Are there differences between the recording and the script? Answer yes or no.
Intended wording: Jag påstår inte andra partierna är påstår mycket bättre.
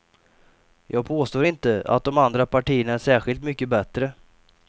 yes